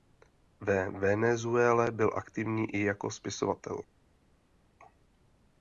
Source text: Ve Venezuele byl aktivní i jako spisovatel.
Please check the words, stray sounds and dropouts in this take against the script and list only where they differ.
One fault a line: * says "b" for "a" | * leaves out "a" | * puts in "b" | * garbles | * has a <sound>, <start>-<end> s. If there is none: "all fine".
all fine